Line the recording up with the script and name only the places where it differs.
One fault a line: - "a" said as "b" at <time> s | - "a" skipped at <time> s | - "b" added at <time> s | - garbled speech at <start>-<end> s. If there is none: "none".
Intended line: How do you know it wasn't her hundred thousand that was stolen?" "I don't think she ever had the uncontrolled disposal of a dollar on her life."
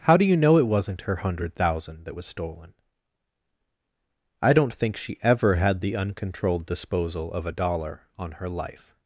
none